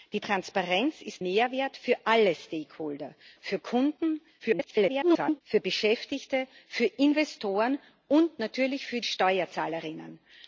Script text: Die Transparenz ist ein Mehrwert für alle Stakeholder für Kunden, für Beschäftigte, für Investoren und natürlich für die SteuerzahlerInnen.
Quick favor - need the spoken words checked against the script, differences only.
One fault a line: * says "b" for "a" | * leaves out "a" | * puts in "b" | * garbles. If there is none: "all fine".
* leaves out "ein"
* garbles
* leaves out "die"